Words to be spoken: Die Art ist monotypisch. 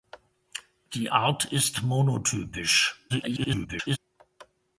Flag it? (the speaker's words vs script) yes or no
yes